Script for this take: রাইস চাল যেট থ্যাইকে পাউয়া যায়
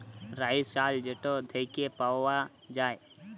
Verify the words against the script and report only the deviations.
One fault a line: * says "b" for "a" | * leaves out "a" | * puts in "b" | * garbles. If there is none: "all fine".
all fine